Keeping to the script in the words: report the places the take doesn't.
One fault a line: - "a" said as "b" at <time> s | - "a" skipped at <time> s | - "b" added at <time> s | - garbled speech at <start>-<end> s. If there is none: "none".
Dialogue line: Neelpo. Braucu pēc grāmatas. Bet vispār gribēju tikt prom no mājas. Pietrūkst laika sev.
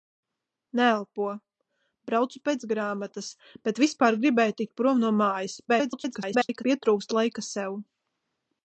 - garbled speech at 5.7-6.6 s